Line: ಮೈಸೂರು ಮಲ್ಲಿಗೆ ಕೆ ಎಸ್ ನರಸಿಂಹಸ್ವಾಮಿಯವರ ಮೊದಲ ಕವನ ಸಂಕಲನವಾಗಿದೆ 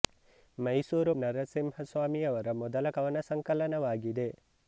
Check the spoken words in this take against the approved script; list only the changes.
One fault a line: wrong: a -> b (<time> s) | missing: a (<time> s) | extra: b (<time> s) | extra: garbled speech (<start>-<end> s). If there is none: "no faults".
missing: ಮಲ್ಲಿಗೆ ಕೆ ಎಸ್ (1.1 s)